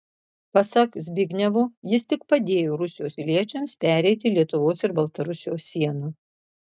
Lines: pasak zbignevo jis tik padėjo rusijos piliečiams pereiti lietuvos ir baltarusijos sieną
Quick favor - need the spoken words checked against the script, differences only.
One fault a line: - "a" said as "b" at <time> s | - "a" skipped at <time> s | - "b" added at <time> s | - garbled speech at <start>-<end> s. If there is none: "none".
none